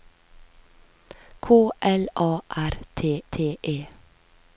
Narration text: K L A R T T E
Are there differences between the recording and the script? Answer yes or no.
no